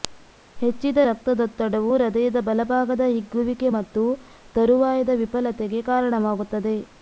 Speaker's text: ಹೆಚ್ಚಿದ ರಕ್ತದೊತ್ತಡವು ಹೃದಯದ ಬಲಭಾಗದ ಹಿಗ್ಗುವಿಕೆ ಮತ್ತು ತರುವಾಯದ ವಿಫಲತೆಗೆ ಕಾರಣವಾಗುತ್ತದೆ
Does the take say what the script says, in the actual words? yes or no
yes